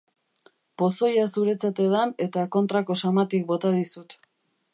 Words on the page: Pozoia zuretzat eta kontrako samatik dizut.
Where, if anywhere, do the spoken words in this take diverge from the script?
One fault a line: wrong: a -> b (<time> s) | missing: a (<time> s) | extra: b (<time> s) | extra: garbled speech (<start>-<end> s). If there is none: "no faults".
extra: edan (1.9 s)
extra: bota (3.5 s)